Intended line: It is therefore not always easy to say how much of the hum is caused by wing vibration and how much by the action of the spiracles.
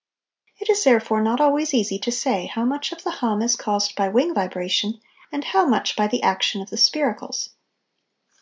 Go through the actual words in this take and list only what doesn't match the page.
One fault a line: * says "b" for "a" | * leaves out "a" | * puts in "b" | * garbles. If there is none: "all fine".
all fine